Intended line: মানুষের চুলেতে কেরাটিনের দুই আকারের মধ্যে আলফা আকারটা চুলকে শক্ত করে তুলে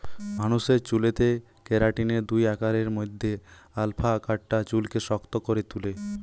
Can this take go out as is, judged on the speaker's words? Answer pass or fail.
pass